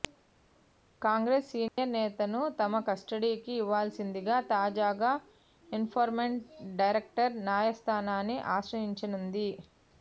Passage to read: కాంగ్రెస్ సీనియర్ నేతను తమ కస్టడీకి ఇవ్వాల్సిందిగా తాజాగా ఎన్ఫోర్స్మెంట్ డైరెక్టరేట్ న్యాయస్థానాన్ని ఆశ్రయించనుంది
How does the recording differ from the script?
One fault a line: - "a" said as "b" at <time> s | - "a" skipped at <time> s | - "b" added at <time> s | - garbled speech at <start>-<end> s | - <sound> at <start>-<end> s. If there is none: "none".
- dropout at 1.7-1.8 s